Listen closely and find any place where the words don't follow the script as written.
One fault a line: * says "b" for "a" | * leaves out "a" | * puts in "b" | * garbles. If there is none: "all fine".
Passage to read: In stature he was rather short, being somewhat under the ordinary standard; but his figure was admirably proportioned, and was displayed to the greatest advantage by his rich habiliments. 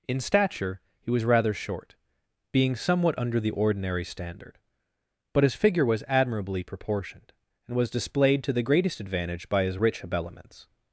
all fine